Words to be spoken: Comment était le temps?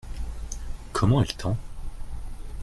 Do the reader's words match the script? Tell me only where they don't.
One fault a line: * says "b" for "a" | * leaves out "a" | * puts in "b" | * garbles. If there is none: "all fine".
* says "est" for "était"